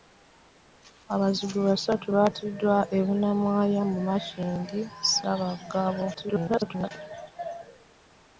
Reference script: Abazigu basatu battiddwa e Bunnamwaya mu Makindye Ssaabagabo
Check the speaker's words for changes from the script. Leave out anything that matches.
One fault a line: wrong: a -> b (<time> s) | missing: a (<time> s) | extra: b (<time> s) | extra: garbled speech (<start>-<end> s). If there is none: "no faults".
extra: garbled speech (6.1-6.9 s)